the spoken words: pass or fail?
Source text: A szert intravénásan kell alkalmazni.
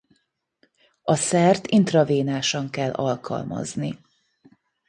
pass